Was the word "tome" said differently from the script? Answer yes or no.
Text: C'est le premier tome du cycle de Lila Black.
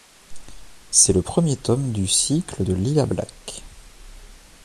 no